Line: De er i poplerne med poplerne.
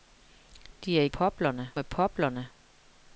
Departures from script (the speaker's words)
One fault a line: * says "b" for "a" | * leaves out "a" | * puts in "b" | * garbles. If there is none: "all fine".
all fine